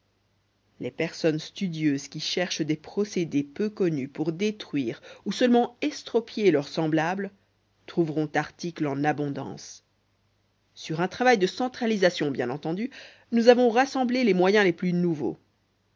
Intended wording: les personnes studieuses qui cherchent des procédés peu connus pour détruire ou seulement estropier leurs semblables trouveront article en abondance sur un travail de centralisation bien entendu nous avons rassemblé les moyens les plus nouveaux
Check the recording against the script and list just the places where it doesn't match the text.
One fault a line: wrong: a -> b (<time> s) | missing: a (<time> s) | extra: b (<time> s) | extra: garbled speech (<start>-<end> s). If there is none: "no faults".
no faults